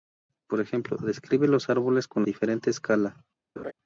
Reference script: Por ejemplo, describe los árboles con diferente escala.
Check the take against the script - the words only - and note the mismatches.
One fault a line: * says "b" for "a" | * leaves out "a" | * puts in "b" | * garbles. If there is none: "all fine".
all fine